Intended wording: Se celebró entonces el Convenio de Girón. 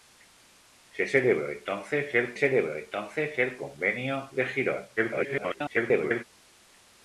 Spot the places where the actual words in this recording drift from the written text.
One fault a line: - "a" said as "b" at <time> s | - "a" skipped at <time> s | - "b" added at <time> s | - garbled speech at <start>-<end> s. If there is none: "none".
- "celebró entonces el" added at 2.3 s
- garbled speech at 5.0-6.2 s